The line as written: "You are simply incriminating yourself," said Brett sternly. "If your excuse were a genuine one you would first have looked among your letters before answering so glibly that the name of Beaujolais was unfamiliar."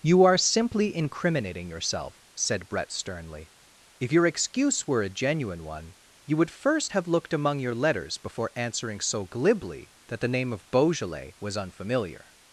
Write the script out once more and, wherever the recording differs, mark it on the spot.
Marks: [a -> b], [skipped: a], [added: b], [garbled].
"You are simply incriminating yourself," said Brett sternly. "If your excuse were a genuine one you would first have looked among your letters before answering so glibly that the name of Beaujolais was unfamiliar."